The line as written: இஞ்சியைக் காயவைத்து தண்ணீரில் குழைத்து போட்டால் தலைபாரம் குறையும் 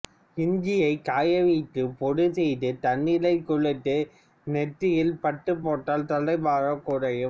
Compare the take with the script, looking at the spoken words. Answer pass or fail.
fail